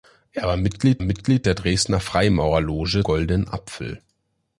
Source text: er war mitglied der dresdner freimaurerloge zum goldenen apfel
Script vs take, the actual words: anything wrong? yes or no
yes